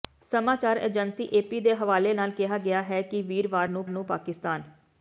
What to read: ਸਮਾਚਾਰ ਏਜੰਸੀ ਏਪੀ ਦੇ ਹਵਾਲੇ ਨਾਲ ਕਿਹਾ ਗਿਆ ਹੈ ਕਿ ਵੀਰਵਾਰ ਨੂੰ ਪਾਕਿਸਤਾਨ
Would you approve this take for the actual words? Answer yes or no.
no